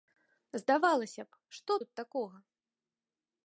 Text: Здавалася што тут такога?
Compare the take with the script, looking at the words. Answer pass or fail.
fail